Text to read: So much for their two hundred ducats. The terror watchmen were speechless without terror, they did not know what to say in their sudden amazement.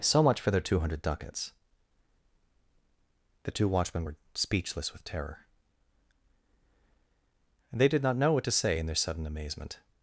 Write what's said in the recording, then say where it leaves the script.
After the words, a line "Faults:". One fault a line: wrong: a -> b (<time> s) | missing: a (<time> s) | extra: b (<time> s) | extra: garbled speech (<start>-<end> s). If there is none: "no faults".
So much for their two hundred ducats. The two watchmen were speechless with terror, they did not know what to say in their sudden amazement.
Faults:
wrong: terror -> two (3.5 s)
wrong: without -> with (4.9 s)